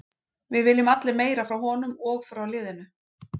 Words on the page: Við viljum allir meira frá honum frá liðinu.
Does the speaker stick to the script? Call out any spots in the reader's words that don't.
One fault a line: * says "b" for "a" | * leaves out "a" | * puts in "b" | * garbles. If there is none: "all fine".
* puts in "og"